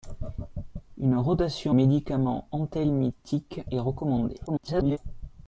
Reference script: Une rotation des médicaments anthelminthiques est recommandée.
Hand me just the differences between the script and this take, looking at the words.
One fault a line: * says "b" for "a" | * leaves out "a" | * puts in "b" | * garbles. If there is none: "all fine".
* leaves out "des"
* garbles